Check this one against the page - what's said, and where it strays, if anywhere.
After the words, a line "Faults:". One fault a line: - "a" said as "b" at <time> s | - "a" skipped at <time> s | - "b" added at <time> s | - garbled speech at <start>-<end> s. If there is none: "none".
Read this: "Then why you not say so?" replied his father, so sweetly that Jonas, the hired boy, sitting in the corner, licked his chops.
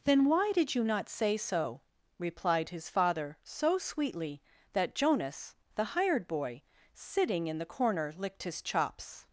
"Then why did you not say so?" replied his father, so sweetly that Jonas, the hired boy, sitting in the corner, licked his chops.
Faults:
- "did" added at 0.5 s